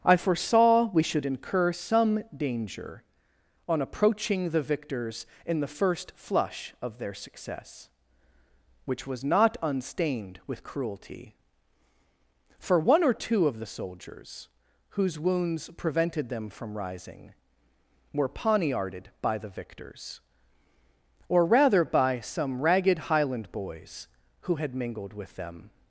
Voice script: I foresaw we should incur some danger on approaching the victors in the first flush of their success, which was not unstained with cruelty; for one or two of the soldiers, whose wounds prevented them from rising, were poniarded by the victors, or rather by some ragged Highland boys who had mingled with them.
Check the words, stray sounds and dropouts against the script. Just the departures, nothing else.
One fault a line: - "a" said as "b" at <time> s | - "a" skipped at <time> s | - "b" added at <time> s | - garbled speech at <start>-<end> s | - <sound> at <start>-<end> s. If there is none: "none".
none